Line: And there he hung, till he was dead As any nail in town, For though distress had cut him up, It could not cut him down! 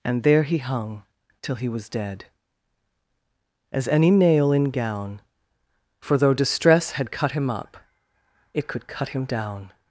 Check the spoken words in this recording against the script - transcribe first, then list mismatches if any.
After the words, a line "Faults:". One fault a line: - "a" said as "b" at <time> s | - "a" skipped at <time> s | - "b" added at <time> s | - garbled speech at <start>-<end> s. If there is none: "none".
And there he hung, till he was dead As any nail in gown, For though distress had cut him up, It could cut him down!
Faults:
- "town" said as "gown" at 4.7 s
- "not" skipped at 8.9 s